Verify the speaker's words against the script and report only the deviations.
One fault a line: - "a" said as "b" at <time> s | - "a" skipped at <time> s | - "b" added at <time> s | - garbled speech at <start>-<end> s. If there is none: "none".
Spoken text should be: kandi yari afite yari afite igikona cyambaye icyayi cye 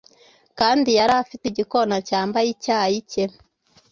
- "yari afite" skipped at 1.4 s